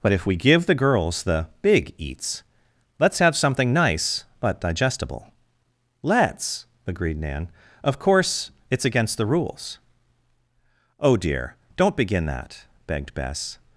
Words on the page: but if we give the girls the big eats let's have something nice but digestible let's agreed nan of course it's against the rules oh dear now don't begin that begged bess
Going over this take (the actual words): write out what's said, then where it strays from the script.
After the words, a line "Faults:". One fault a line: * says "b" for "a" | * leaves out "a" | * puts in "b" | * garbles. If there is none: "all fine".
but if we give the girls the big eats let's have something nice but digestible let's agreed nan of course it's against the rules oh dear don't begin that begged bess
Faults:
* leaves out "now"